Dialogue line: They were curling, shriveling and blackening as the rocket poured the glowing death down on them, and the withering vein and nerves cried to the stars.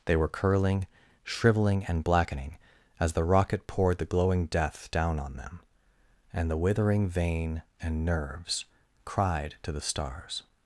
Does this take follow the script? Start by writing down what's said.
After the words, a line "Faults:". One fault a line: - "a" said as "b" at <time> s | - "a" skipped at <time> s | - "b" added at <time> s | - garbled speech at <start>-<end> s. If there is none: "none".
They were curling, shriveling and blackening as the rocket poured the glowing death down on them, and the withering vein and nerves cried to the stars.
Faults:
none